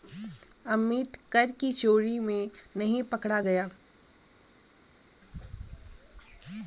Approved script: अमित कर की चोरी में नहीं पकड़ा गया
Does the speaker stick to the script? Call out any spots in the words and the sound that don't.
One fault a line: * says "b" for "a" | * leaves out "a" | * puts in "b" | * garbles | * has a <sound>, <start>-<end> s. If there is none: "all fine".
all fine